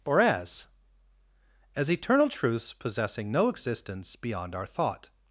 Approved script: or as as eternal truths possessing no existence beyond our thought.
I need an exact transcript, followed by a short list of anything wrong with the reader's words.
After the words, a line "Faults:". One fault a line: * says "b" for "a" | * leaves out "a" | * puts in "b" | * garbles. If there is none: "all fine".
or as as eternal truths possessing no existence beyond our thought.
Faults:
all fine